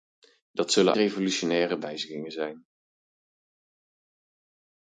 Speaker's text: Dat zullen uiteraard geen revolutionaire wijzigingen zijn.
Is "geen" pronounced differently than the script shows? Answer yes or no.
yes